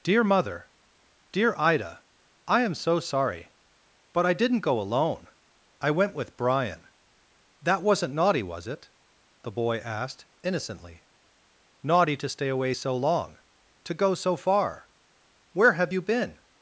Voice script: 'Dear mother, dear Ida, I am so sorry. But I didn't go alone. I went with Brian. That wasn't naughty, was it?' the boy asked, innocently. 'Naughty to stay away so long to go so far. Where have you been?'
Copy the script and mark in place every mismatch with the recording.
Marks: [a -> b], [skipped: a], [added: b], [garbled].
'Dear mother, dear Ida, I am so sorry. But I didn't go alone. I went with Brian. That wasn't naughty, was it?' the boy asked, innocently. 'Naughty to stay away so long to go so far. Where have you been?'